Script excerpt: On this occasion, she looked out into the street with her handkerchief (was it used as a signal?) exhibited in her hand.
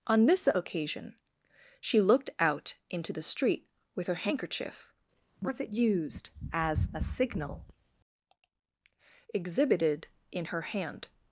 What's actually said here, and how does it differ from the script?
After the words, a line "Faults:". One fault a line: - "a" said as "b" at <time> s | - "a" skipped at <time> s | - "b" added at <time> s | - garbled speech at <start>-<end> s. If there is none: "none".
On this occasion, she looked out into the street with her handkerchief (was it used as a signal?) exhibited in her hand.
Faults:
none